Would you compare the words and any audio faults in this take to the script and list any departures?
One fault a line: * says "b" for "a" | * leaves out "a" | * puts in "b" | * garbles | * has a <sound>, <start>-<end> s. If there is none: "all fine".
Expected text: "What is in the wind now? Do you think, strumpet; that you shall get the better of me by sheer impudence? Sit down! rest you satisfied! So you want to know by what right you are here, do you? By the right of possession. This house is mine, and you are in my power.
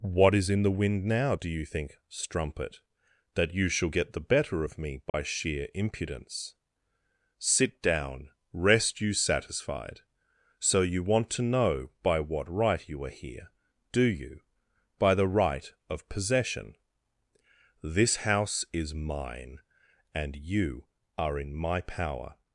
* has a dropout, 5.1-5.1 s